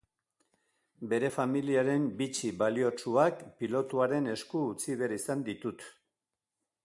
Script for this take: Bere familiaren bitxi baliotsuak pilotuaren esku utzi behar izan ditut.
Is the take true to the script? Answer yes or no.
yes